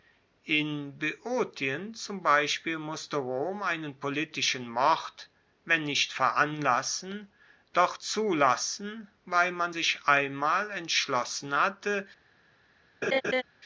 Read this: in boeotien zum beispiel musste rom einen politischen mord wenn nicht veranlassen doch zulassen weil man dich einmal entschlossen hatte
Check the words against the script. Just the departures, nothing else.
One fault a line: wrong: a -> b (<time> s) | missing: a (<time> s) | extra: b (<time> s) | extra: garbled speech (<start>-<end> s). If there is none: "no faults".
wrong: dich -> sich (9.7 s)